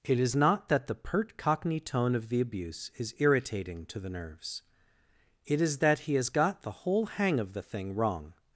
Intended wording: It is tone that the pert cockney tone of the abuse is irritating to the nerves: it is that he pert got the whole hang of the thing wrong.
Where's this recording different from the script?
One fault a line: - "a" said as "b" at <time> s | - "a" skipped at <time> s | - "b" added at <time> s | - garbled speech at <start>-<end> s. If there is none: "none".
- "tone" said as "not" at 0.3 s
- "pert" said as "has" at 6.2 s